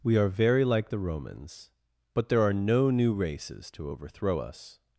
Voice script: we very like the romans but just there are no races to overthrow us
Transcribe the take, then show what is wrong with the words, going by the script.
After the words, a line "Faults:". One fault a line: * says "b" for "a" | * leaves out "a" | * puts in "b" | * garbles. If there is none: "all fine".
we are very like the romans but there are no new races to overthrow us
Faults:
* puts in "are"
* leaves out "just"
* puts in "new"